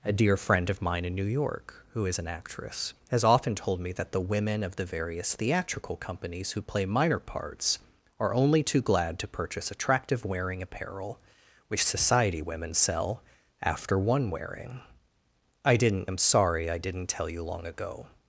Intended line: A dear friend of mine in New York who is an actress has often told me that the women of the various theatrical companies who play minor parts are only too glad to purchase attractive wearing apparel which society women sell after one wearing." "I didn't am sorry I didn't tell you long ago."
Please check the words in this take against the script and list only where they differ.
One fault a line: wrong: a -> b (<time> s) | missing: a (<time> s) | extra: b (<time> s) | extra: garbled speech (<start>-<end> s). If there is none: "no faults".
no faults